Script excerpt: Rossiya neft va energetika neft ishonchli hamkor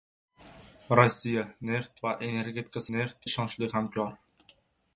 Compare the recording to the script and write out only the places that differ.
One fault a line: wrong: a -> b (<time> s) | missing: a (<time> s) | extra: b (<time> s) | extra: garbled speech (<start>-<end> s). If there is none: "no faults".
no faults